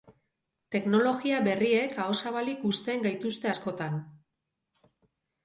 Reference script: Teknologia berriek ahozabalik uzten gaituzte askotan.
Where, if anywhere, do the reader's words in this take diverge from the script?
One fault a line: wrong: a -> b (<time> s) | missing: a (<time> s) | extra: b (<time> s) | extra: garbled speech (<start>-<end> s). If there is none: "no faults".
no faults